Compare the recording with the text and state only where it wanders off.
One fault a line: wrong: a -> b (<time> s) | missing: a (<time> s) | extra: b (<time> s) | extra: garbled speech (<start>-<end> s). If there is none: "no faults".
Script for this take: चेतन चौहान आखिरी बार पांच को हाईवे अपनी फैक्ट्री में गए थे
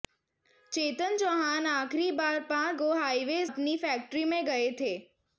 no faults